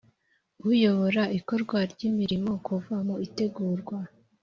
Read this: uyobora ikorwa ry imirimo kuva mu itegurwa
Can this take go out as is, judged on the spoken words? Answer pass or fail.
pass